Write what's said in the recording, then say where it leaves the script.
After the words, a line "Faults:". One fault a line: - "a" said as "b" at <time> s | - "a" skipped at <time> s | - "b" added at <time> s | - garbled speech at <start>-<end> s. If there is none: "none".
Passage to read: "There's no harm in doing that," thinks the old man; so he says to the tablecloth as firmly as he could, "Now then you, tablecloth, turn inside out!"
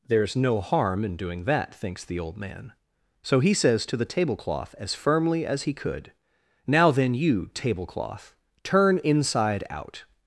"There's no harm in doing that," thinks the old man; so he says to the tablecloth as firmly as he could, "Now then you, tablecloth, turn inside out!"
Faults:
none